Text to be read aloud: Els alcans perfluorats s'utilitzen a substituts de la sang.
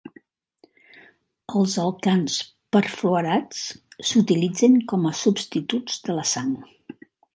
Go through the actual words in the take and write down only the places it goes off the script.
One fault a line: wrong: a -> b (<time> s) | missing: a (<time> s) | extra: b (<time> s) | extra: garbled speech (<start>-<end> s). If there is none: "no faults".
extra: com (4.9 s)